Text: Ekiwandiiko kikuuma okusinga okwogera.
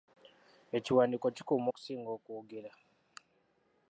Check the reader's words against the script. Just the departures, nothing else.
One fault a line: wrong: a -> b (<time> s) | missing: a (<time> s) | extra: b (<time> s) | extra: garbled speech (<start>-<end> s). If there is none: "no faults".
no faults